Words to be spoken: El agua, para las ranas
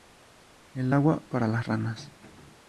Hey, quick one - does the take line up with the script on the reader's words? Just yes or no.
yes